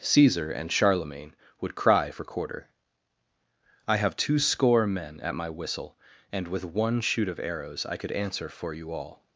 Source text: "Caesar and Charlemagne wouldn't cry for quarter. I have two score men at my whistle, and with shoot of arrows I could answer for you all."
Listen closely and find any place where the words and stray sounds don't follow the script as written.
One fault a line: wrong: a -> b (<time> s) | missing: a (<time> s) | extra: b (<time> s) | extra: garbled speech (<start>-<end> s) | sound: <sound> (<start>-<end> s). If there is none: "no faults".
wrong: wouldn't -> would (1.6 s)
extra: one (6.6 s)